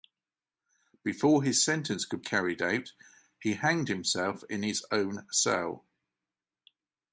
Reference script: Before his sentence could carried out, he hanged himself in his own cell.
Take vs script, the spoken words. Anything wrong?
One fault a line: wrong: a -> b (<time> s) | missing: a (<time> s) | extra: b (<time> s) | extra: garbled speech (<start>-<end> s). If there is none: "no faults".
no faults